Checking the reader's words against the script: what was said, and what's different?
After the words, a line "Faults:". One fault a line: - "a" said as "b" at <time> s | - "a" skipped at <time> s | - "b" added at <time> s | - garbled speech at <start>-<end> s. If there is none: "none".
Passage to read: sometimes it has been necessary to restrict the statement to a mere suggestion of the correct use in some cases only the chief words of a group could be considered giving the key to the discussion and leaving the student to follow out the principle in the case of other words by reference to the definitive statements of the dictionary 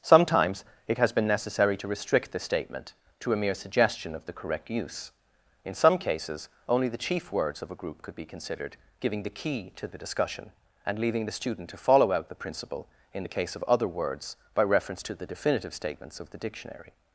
sometimes it has been necessary to restrict the statement to a mere suggestion of the correct use in some cases only the chief words of a group could be considered giving the key to the discussion and leaving the student to follow out the principle in the case of other words by reference to the definitive statements of the dictionary
Faults:
none